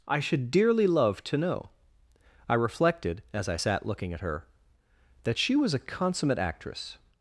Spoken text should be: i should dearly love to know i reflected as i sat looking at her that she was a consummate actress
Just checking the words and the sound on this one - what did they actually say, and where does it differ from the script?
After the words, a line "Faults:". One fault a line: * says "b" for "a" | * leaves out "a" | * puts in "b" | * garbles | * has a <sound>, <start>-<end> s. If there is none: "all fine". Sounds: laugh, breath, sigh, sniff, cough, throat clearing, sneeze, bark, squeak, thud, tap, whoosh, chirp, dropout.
i should dearly love to know i reflected as i sat looking at her that she was a consummate actress
Faults:
all fine